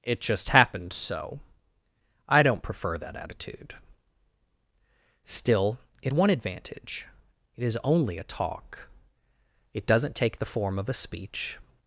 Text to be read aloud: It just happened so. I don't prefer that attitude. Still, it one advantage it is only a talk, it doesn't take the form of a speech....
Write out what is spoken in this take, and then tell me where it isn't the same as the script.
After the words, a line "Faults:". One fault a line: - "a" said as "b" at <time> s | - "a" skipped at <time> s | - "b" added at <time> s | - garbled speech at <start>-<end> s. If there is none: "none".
It just happened so. I don't prefer that attitude. Still, it one advantage it is only a talk, it doesn't take the form of a speech....
Faults:
none